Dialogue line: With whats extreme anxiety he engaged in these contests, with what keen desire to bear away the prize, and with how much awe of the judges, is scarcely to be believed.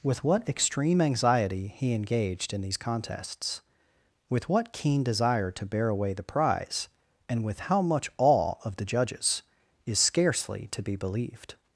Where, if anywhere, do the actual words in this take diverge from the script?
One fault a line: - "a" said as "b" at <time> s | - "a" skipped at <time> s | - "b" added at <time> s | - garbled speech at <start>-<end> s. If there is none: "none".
- "whats" said as "what" at 0.2 s